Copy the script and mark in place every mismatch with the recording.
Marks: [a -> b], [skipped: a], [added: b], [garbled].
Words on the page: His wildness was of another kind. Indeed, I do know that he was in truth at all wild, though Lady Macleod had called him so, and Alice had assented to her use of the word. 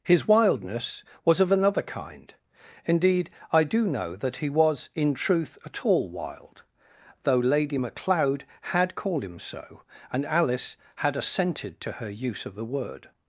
His wildness was of another kind. Indeed, I do know that he was in truth at all wild, though Lady Macleod had called him so, and Alice had assented to her use of the word.